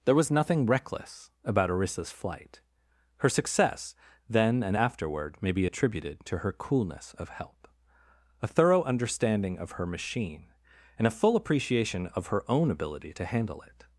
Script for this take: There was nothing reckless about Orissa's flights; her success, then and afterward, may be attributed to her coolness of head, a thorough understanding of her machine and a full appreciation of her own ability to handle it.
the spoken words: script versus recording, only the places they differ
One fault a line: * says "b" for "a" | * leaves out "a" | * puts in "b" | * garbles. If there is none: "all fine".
* says "flight" for "flights"
* says "help" for "head"